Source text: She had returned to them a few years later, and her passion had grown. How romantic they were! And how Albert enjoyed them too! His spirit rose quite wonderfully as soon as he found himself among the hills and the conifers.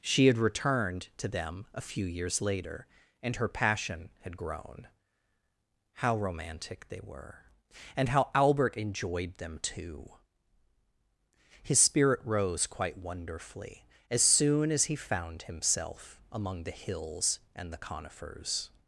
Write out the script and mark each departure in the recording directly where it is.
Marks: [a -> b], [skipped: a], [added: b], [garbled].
She had returned to them a few years later, and her passion had grown. How romantic they were! And how Albert enjoyed them too! His spirit rose quite wonderfully as soon as he found himself among the hills and the conifers.